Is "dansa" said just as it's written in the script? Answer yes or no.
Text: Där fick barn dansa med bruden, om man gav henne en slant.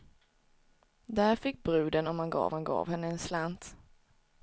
no